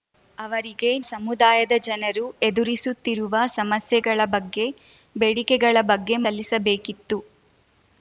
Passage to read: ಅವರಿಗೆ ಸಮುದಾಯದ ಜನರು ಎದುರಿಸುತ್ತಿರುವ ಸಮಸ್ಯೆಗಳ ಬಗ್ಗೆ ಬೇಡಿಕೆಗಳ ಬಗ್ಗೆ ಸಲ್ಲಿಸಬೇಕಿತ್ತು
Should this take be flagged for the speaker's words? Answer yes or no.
no